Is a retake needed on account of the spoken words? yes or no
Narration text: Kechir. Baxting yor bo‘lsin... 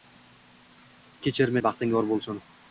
no